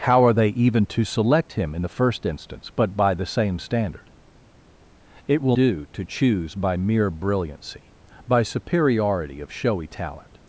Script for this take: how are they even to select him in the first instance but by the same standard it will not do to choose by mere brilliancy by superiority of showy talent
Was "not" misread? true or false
true